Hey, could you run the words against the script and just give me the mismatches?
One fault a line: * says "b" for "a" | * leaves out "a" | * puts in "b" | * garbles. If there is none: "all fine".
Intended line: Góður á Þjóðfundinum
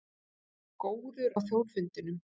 all fine